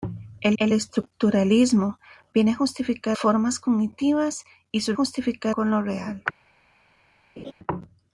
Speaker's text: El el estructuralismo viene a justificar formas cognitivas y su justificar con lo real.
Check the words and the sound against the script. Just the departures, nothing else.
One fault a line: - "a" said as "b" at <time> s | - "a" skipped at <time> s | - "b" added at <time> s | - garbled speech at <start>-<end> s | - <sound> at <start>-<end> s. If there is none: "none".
- laugh at 7.4-7.5 s